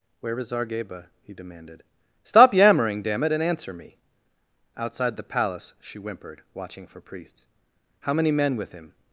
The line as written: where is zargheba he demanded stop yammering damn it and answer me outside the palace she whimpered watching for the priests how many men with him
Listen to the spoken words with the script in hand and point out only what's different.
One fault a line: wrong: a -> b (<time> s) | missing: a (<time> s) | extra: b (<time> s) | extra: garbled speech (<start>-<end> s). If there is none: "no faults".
missing: the (7.0 s)